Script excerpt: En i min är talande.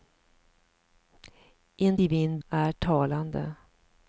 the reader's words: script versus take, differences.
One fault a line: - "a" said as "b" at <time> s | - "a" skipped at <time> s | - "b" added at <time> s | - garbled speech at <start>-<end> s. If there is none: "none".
none